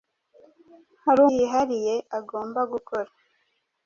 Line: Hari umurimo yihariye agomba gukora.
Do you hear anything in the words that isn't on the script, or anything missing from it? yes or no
yes